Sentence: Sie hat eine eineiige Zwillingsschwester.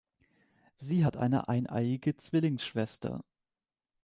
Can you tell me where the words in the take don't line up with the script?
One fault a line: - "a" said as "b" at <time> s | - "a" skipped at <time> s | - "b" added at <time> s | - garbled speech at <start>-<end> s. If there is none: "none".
none